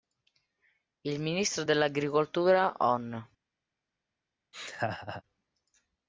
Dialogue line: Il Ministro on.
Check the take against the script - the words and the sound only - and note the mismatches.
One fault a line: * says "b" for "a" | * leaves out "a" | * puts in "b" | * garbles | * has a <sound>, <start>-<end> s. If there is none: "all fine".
* puts in "dell'Agricoltura"
* has a laugh, 4.5-5.2 s